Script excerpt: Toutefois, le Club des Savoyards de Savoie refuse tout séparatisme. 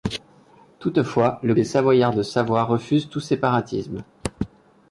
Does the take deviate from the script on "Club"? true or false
true